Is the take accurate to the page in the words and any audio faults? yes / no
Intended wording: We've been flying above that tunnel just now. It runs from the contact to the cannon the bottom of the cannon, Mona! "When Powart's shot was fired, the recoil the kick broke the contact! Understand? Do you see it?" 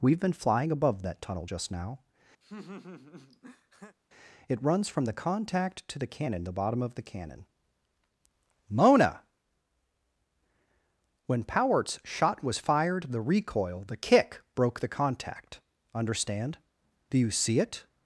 no